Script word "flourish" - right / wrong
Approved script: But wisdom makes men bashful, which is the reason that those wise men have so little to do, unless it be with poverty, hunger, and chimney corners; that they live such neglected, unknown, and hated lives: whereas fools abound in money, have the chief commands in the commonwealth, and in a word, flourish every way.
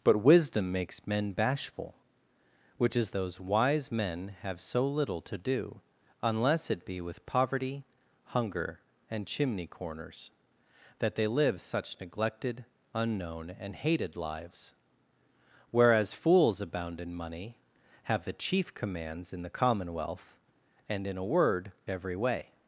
wrong